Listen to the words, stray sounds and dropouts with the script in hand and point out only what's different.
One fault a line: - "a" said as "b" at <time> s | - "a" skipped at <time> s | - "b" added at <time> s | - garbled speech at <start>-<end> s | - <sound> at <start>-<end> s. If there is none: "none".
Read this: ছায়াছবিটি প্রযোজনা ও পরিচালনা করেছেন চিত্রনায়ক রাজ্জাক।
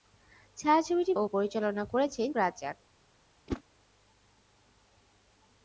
- "প্রযোজনা" skipped at 1.1 s
- "চিত্রনায়ক" skipped at 2.3 s
- whoosh at 3.5-3.6 s